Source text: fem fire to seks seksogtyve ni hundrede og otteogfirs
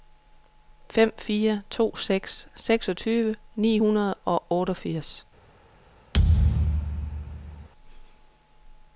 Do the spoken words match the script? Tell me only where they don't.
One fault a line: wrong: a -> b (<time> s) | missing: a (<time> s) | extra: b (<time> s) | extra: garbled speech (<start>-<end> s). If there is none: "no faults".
no faults